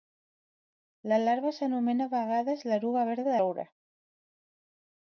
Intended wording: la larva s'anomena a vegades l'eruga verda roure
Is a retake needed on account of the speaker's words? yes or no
no